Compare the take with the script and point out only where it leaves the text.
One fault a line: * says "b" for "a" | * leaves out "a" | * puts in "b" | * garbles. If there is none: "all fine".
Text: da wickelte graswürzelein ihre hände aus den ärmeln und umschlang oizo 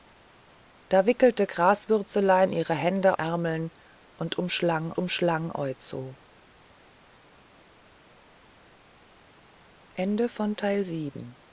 * leaves out "aus den"
* puts in "umschlang"